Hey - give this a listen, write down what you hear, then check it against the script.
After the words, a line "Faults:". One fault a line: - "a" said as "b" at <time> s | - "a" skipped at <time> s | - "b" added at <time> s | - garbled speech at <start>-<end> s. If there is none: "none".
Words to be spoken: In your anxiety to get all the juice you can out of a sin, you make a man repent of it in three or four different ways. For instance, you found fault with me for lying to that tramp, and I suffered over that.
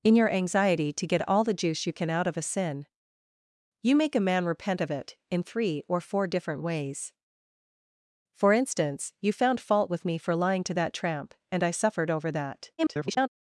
In your anxiety to get all the juice you can out of a sin, you make a man repent of it in three or four different ways. For instance, you found fault with me for lying to that tramp, and I suffered over that. [garbled]
Faults:
- garbled speech at 12.8-13.3 s